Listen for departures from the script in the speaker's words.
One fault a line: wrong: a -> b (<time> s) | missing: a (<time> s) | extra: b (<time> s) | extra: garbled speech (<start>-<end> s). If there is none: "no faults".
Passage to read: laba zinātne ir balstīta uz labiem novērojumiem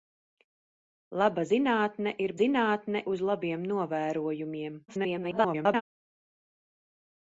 wrong: balstīta -> zinātne (2.4 s)
extra: garbled speech (4.9-5.8 s)